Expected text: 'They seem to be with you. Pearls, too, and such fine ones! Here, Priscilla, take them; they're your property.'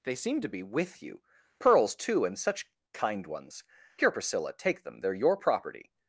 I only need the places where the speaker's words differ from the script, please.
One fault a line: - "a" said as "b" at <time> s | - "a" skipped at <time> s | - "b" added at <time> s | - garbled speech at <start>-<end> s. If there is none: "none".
- "fine" said as "kind" at 2.9 s